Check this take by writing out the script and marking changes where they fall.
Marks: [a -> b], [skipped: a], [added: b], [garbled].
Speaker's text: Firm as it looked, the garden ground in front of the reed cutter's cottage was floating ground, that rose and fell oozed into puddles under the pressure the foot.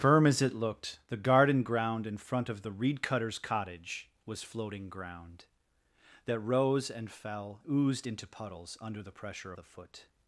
Firm as it looked, the garden ground in front of the reed cutter's cottage was floating ground, that rose and fell oozed into puddles under the pressure the foot.